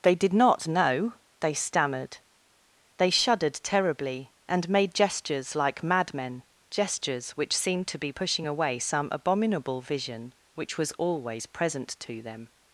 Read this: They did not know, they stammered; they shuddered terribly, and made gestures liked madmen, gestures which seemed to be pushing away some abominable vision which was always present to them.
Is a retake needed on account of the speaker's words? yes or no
yes